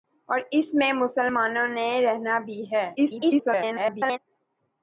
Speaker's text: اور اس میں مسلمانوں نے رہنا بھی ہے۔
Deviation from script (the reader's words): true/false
true